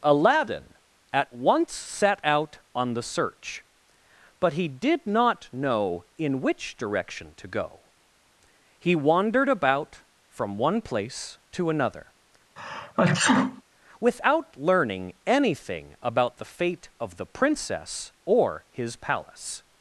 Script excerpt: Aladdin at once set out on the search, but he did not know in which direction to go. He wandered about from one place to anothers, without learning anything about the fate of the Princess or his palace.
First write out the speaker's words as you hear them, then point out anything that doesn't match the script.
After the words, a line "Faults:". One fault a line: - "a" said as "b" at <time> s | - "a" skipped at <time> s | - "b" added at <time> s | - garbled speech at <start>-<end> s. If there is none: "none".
Aladdin at once set out on the search, but he did not know in which direction to go. He wandered about from one place to another, without learning anything about the fate of the Princess or his palace.
Faults:
- "anothers" said as "another" at 11.7 s